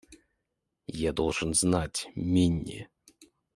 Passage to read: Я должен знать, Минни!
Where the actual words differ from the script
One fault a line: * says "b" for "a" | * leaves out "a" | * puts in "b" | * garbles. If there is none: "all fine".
all fine